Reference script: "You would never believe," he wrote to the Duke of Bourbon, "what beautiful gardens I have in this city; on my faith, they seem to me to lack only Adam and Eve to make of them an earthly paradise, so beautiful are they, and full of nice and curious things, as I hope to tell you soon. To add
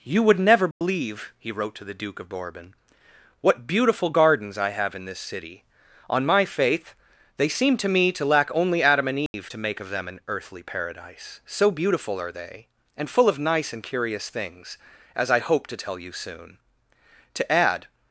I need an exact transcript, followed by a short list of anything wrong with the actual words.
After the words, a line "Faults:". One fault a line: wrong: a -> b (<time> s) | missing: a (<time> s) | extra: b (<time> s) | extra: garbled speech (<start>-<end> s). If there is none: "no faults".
"You would never believe," he wrote to the Duke of Bourbon, "what beautiful gardens I have in this city; on my faith, they seem to me to lack only Adam and Eve to make of them an earthly paradise, so beautiful are they, and full of nice and curious things, as I hope to tell you soon. To add
Faults:
no faults